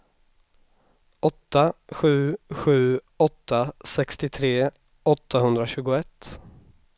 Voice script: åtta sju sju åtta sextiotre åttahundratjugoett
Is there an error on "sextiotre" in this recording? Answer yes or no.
no